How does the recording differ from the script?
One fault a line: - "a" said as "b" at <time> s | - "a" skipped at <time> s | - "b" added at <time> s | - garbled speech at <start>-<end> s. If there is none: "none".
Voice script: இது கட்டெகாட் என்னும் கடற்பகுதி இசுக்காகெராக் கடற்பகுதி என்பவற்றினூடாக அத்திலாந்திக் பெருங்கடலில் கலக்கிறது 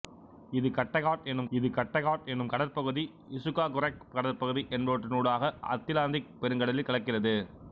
- "இது கட்டெகாட் என்னும்" added at 1.5 s